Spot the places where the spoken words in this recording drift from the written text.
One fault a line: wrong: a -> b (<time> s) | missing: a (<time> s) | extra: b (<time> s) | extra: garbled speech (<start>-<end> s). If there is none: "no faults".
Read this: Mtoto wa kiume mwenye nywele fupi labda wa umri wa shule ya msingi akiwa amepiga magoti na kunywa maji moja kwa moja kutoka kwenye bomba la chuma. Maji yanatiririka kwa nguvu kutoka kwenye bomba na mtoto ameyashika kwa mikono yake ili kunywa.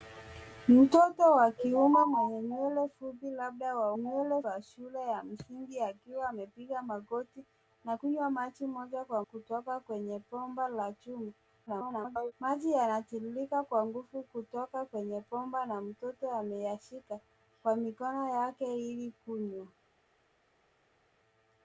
wrong: umri -> nywele (4.0 s)
missing: moja (9.2 s)
extra: garbled speech (11.7-12.3 s)